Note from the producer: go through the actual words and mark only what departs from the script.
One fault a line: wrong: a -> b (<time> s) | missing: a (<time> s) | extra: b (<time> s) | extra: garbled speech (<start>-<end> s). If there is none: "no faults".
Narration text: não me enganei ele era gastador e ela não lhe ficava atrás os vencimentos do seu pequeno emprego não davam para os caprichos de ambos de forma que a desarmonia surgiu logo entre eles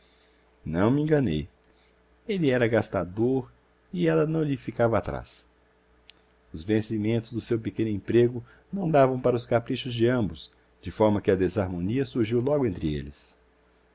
no faults